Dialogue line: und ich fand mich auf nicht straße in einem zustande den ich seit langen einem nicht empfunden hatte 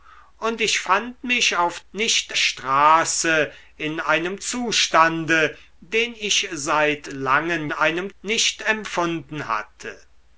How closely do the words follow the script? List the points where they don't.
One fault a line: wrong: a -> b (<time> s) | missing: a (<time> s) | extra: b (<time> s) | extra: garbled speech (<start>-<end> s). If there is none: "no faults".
no faults